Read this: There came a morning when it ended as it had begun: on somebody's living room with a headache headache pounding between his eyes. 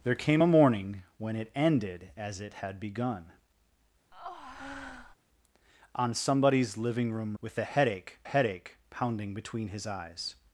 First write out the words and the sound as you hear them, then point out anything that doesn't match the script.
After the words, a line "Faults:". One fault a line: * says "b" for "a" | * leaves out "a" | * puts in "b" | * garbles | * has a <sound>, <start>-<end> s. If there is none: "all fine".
There came a morning when it ended as it had begun: on somebody's living room with a headache headache pounding between his eyes.
Faults:
* has a breath, 4.1-5.2 s